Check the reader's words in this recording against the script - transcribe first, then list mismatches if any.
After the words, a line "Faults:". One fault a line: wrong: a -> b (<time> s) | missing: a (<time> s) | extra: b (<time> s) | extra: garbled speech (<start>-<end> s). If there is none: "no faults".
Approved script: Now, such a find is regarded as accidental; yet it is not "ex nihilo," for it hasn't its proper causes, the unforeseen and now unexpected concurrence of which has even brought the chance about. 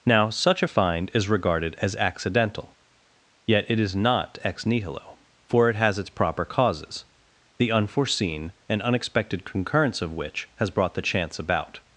Now, such a find is regarded as accidental; yet it is not "ex nihilo," for it has its proper causes, the unforeseen and unexpected concurrence of which has brought the chance about.
Faults:
wrong: hasn't -> has (5.8 s)
missing: now (8.8 s)
missing: even (10.7 s)